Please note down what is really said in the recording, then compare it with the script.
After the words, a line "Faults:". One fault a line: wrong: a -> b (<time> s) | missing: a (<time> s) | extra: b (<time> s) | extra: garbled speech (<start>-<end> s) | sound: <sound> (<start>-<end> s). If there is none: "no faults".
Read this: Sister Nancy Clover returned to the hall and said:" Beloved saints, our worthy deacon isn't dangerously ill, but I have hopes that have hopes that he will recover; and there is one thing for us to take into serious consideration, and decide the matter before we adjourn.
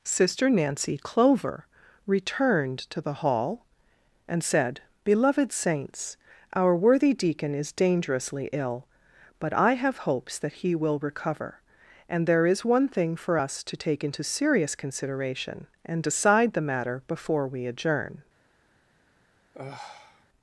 Sister Nancy Clover returned to the hall and said:" Beloved saints, our worthy deacon is dangerously ill, but I have hopes that he will recover; and there is one thing for us to take into serious consideration, and decide the matter before we adjourn.
Faults:
wrong: isn't -> is (7.5 s)
missing: have hopes that (10.5 s)
sound: sigh (19.5-20.3 s)